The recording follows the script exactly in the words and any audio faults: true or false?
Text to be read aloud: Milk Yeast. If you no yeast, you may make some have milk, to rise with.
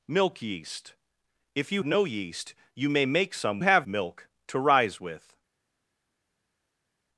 true